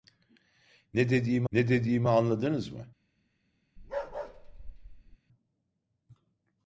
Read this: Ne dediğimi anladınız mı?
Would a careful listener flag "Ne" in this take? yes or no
no